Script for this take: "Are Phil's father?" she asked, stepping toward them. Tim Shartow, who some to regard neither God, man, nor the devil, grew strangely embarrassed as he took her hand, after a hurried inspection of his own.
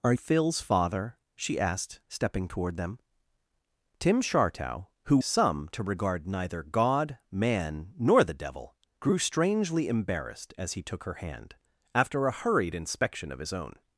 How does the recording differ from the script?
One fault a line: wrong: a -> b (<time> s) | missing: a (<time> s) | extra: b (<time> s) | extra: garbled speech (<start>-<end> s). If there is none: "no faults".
no faults